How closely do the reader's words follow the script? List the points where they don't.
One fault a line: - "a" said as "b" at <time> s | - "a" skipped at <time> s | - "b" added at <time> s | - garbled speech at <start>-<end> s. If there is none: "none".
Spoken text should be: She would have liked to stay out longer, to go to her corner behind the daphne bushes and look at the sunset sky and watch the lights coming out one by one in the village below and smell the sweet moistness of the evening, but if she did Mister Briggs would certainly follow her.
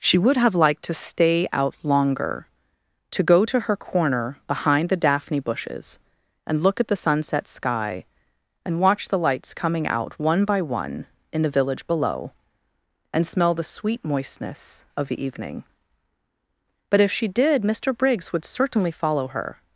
none